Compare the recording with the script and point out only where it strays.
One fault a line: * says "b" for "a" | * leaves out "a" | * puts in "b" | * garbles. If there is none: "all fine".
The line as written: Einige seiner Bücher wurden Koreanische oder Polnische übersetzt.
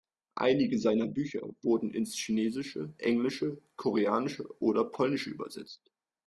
* puts in "ins Chinesische Englische"